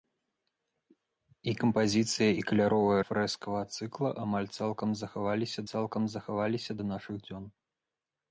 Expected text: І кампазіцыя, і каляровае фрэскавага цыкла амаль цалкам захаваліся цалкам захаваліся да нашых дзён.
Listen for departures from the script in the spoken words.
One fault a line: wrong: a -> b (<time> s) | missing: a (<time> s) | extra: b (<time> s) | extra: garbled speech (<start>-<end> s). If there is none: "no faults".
no faults